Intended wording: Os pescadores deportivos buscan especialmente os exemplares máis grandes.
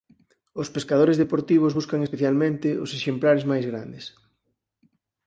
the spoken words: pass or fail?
pass